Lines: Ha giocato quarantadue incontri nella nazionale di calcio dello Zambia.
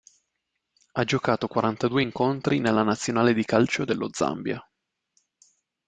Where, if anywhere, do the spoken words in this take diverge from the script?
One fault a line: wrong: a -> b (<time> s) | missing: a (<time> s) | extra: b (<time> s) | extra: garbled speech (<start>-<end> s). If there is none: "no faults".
no faults